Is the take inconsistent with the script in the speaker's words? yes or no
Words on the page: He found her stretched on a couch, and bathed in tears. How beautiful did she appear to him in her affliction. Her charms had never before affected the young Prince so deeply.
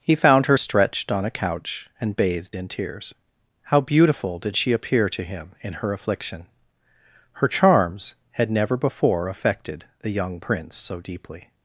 no